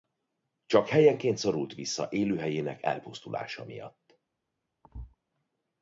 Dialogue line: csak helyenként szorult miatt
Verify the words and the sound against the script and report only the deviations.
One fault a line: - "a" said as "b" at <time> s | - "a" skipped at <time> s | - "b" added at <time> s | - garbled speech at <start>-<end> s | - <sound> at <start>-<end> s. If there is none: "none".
- "vissza élőhelyének elpusztulása" added at 1.7 s
- thud at 4.8-5.2 s